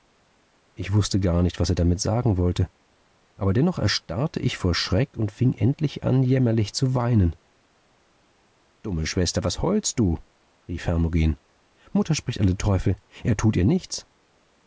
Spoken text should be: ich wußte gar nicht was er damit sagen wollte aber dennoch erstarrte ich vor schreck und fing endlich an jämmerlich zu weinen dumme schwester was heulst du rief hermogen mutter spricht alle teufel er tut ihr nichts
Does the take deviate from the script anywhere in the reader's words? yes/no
no